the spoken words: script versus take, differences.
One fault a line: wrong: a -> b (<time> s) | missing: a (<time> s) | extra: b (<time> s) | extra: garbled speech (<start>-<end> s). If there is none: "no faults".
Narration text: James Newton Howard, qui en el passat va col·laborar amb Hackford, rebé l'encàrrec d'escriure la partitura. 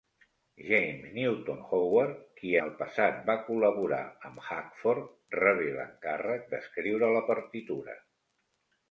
missing: en (2.5 s)